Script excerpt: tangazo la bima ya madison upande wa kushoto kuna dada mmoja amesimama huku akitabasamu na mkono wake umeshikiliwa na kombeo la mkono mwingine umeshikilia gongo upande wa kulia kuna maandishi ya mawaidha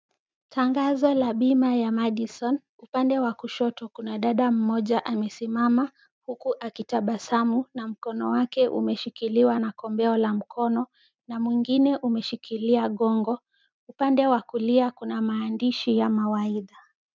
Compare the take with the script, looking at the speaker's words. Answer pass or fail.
fail